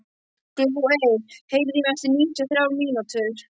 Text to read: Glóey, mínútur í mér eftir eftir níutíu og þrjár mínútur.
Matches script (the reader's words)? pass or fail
fail